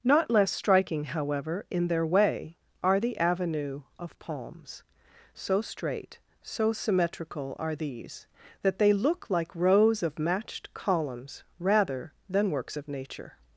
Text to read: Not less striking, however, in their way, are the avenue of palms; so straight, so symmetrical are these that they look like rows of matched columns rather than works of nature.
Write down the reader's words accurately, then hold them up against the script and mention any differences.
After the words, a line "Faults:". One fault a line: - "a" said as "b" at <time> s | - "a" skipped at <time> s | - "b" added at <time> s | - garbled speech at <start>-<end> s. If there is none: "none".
Not less striking, however, in their way, are the avenue of palms; so straight, so symmetrical are these that they look like rows of matched columns rather than works of nature.
Faults:
none